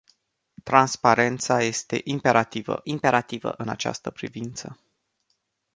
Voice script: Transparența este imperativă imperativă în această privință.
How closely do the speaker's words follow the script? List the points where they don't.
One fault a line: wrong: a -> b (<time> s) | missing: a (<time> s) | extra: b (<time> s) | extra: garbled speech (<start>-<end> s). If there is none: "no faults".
no faults